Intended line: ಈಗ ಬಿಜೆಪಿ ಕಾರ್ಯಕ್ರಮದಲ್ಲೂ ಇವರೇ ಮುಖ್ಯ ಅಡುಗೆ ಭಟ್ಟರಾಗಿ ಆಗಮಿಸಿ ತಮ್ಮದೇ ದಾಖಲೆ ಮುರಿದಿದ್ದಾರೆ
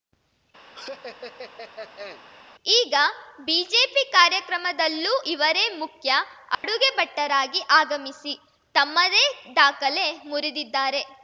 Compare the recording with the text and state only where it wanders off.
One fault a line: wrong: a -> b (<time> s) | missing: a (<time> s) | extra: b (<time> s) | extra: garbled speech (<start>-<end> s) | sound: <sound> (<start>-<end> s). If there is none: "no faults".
sound: laugh (0.7-2.2 s)
sound: dropout (6.5-6.6 s)